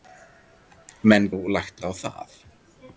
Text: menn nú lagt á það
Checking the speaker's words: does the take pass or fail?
pass